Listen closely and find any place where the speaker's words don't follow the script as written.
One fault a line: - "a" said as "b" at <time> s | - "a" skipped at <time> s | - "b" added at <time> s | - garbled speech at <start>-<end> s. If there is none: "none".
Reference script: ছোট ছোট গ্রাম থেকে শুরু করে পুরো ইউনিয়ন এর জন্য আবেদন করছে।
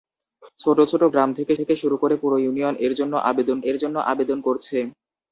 - "থেকে" added at 1.6 s
- "এর জন্য আবেদন" added at 3.6 s